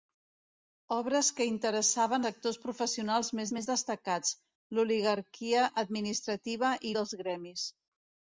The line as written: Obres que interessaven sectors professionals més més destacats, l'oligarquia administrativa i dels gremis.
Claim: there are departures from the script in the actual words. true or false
false